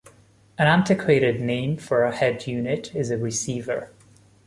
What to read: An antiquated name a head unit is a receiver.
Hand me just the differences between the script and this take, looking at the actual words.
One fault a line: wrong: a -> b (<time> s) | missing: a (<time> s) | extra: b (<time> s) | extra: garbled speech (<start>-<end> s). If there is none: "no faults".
extra: for (1.7 s)